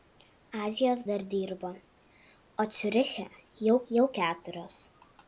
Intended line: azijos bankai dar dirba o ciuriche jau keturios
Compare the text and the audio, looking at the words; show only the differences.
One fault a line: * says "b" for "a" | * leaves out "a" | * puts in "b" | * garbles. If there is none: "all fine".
* leaves out "bankai"
* puts in "jau"